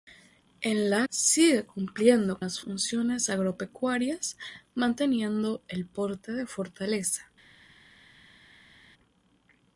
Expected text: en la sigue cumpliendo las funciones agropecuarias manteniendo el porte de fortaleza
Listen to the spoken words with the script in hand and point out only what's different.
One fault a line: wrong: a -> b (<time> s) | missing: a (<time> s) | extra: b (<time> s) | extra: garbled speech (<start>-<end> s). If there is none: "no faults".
no faults